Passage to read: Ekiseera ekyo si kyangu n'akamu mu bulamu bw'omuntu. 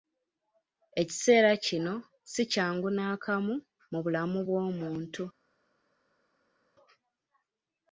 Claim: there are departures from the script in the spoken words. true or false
true